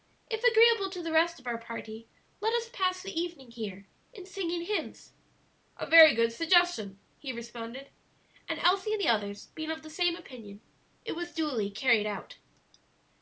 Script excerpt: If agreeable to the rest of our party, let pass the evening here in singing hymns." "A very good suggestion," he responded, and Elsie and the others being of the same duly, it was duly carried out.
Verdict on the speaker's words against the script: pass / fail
fail